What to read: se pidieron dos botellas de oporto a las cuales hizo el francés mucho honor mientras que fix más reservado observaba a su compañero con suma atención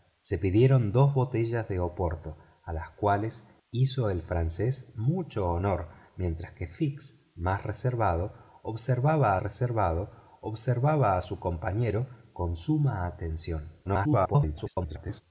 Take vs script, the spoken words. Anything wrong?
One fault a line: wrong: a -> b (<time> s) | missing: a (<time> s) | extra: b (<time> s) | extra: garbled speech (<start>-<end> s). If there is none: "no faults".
extra: reservado observaba (9.4 s)
extra: garbled speech (13.8-15.2 s)